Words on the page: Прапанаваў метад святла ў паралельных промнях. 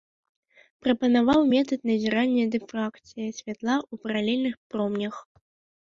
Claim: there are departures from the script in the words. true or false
true